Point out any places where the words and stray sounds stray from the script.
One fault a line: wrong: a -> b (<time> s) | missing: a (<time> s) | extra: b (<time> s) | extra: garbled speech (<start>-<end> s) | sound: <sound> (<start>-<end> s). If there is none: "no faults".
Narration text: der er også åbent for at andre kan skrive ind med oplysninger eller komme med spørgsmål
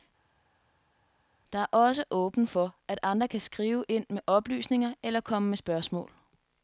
no faults